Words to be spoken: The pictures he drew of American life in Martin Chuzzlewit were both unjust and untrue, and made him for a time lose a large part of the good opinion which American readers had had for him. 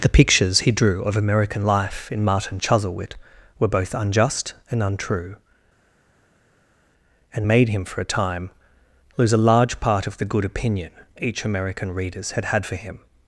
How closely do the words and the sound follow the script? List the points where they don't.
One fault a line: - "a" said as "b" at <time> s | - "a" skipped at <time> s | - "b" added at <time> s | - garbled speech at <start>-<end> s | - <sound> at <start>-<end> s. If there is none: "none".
- "which" said as "each" at 11.2 s